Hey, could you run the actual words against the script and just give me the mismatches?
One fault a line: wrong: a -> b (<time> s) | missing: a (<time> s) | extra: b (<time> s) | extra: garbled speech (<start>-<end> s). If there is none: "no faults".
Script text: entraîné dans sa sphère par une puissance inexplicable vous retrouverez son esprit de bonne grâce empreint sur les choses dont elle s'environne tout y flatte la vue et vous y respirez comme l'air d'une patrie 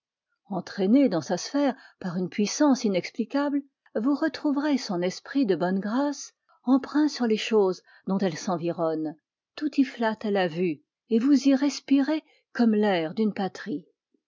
no faults